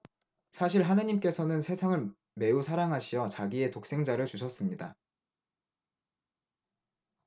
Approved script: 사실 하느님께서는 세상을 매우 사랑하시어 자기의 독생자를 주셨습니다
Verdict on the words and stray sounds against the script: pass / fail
pass